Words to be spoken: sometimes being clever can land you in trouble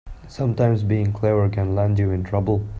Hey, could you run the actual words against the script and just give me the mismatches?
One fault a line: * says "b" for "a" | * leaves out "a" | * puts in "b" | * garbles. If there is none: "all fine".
all fine